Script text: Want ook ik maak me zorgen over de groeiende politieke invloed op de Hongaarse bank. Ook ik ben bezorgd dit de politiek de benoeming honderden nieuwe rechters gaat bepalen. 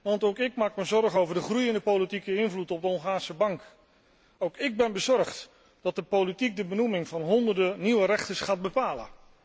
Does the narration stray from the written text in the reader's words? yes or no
yes